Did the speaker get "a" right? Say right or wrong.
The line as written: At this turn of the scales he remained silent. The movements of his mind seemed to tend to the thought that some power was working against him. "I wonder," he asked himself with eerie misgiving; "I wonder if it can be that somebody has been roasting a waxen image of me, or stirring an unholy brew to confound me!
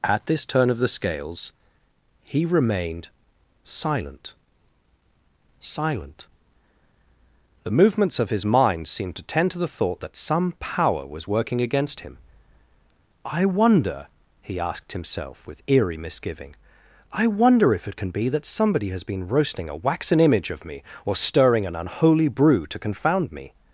right